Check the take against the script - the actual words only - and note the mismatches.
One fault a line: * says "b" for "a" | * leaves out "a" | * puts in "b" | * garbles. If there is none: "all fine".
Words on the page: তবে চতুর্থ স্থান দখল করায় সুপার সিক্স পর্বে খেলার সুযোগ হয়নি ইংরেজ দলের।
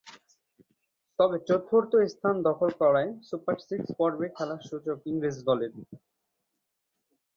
* leaves out "হয়নি"